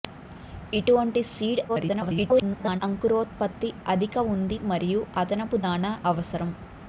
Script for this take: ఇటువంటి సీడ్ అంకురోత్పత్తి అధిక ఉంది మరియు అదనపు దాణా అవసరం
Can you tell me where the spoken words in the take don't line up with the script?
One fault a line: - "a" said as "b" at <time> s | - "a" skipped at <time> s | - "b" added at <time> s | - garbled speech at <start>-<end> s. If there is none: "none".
- garbled speech at 1.7-2.8 s